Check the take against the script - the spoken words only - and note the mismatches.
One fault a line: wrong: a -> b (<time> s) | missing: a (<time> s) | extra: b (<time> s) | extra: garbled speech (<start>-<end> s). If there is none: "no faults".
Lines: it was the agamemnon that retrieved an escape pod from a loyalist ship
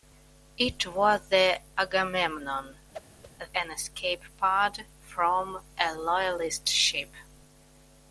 missing: that retrieved (2.7 s)